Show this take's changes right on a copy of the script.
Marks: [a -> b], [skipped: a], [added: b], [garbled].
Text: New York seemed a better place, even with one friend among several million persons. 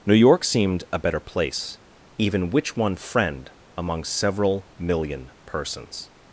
New York seemed a better place, even [with -> which] one friend among several million persons.